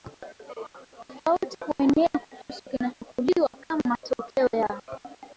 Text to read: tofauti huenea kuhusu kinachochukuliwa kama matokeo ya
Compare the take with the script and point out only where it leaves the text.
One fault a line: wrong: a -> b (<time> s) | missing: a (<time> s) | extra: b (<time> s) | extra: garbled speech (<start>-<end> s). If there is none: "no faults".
no faults